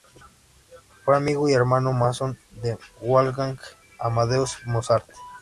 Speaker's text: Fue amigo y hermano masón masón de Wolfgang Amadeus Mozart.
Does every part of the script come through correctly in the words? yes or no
no